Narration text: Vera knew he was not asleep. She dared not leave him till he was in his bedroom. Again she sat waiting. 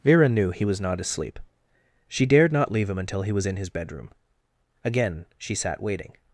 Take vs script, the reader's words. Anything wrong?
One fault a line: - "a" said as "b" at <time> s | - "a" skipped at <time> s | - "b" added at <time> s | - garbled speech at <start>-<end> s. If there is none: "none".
- "till" said as "until" at 3.0 s